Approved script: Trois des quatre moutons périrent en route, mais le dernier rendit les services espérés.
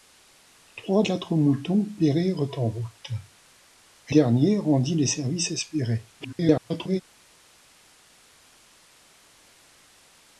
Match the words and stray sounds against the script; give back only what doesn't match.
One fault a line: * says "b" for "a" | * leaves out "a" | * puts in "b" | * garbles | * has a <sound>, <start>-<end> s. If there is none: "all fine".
* leaves out "des"
* leaves out "le"
* garbles